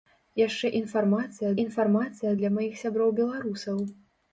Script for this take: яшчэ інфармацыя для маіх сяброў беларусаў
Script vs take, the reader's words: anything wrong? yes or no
yes